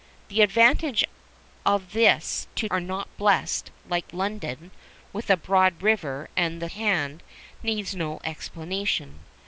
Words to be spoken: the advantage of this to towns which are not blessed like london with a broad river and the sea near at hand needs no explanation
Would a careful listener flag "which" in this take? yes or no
yes